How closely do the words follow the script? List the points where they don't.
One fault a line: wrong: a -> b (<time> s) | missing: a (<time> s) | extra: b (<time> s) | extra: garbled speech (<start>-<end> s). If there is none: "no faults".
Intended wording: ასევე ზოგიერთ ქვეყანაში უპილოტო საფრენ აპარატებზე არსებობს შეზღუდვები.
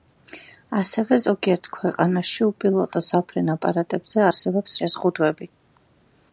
no faults